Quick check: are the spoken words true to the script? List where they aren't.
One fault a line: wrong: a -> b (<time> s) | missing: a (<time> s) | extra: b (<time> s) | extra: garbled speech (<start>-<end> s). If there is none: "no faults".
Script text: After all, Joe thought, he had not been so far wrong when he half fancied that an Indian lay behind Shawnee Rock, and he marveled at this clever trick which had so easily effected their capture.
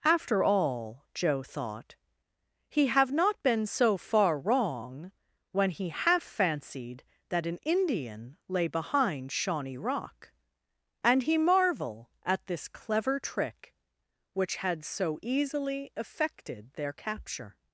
wrong: had -> have (2.9 s)
wrong: marveled -> marvel (11.4 s)